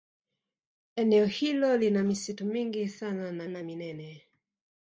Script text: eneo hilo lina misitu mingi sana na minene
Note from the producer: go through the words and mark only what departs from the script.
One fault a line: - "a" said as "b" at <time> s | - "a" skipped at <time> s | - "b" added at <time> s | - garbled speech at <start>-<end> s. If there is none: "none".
- "na" added at 3.5 s